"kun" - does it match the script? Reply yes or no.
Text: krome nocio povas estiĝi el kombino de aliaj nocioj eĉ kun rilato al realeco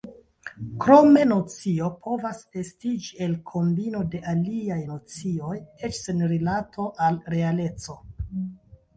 no